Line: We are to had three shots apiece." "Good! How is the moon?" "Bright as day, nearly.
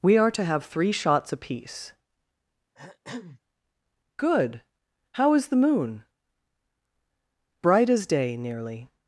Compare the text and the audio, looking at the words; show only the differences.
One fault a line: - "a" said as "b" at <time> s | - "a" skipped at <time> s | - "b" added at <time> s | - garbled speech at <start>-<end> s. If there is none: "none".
- "had" said as "have" at 0.4 s